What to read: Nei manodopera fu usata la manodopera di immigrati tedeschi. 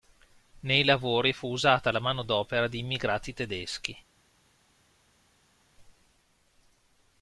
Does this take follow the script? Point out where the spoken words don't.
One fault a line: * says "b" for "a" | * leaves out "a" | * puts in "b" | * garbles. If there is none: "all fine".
* says "lavori" for "manodopera"